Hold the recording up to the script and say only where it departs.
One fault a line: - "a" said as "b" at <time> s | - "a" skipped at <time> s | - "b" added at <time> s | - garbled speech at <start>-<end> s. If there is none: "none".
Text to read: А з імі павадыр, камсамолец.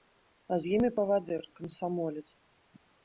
none